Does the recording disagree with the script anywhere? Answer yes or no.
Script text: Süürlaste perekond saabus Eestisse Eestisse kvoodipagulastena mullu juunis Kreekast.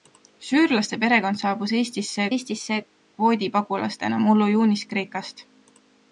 no